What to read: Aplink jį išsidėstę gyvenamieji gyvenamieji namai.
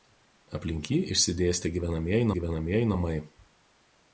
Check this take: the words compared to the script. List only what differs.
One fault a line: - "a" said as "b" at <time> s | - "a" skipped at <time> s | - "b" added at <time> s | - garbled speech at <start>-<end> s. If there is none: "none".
none